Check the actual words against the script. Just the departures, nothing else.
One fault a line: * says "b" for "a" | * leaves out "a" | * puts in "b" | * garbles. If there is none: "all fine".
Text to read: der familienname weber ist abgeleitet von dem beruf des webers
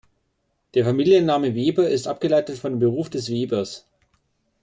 all fine